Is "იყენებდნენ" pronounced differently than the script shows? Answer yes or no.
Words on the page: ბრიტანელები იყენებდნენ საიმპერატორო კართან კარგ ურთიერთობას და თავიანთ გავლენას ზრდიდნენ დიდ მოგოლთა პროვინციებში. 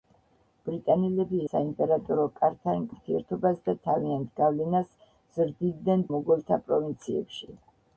yes